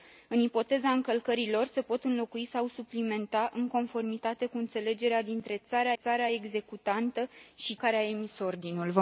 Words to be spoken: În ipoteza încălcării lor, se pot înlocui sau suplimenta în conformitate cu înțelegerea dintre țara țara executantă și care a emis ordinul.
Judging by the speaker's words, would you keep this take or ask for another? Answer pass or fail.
pass